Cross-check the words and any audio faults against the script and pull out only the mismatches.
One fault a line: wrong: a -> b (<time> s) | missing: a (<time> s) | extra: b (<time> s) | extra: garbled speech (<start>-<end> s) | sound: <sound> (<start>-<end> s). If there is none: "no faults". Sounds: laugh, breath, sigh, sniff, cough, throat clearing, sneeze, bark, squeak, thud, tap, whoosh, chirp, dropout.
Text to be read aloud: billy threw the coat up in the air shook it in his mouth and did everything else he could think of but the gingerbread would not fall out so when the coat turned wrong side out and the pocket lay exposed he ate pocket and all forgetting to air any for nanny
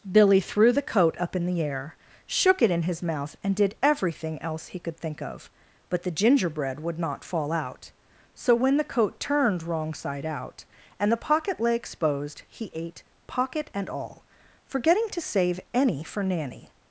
wrong: air -> save (15.2 s)